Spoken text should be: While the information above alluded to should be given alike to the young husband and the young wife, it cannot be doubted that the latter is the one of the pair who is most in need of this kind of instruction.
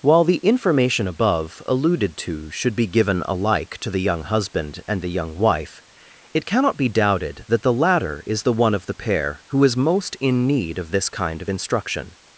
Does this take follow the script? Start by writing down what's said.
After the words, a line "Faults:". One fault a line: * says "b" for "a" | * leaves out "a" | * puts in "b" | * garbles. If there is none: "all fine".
While the information above alluded to should be given alike to the young husband and the young wife, it cannot be doubted that the latter is the one of the pair who is most in need of this kind of instruction.
Faults:
all fine